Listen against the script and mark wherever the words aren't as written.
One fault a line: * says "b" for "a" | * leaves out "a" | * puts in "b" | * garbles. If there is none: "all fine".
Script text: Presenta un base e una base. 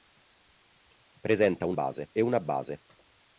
all fine